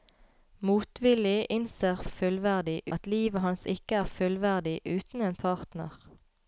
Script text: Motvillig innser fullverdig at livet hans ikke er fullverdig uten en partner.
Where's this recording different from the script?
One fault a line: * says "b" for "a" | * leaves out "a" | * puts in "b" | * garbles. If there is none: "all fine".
all fine